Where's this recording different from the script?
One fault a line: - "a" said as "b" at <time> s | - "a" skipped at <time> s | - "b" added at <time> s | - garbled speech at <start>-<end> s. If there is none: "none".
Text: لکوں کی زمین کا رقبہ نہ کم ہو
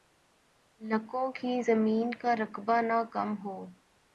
none